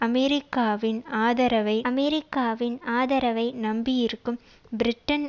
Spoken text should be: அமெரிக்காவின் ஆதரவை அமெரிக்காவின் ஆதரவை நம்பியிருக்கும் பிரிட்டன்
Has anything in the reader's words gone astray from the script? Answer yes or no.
no